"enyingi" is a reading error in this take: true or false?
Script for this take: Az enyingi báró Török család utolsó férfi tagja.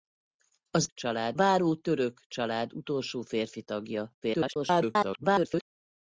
true